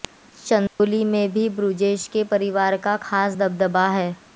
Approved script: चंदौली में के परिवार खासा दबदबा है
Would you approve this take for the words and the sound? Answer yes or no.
no